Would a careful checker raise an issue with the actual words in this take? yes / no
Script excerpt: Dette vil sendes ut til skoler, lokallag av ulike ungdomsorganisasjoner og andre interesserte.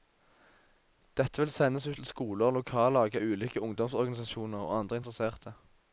no